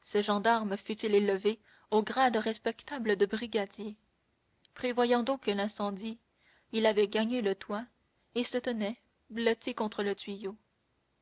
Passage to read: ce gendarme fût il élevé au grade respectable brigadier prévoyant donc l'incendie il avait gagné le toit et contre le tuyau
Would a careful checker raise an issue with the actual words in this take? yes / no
yes